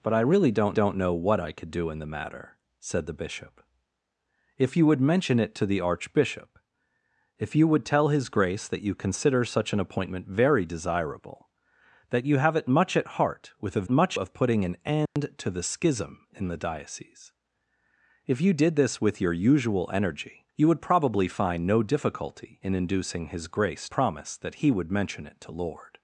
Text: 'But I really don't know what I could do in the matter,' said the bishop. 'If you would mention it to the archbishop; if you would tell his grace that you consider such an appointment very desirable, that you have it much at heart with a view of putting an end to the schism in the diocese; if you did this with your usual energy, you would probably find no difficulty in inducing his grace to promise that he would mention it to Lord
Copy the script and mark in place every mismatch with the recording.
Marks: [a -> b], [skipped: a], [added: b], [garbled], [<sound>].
'But I really don't [added: don't] know what I could do in the matter,' said the bishop. 'If you would mention it to the archbishop; if you would tell his grace that you consider such an appointment very desirable, that you have it much at heart with a [view -> much] of putting an end [dropout] to the schism in the diocese; if you did this with your usual energy, you would probably find no difficulty in inducing his grace [skipped: to] promise that he would mention it to Lord